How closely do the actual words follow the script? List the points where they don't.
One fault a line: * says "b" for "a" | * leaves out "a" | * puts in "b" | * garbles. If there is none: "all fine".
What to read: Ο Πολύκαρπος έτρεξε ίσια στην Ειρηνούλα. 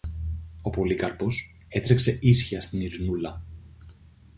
all fine